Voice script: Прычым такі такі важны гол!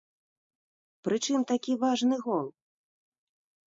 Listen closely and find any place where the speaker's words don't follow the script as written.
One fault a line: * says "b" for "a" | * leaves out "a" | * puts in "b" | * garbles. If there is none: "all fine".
* leaves out "такі"